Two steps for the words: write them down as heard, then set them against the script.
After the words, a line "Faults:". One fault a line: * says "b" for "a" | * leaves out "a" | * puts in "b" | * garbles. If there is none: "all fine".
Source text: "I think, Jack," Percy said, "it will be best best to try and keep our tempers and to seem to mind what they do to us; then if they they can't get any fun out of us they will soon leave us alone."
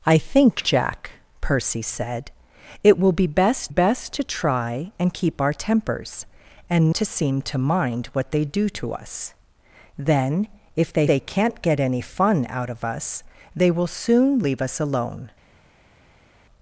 "I think, Jack," Percy said, "it will be best best to try and keep our tempers and to seem to mind what they do to us; then if they they can't get any fun out of us they will soon leave us alone."
Faults:
all fine